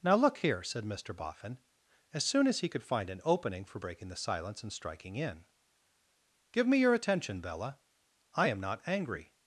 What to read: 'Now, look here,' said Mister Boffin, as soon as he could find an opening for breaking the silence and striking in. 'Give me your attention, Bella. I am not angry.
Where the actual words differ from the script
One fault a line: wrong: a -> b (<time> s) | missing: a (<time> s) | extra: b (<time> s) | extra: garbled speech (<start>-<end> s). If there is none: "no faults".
no faults